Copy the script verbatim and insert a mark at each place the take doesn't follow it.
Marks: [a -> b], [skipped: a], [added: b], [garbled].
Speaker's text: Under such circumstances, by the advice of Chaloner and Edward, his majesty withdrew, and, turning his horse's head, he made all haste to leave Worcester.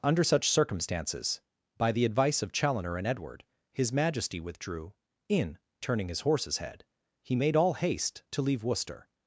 Under such circumstances, by the advice of Chaloner and Edward, his majesty withdrew, [and, -> in] turning his horse's head, he made all haste to leave Worcester.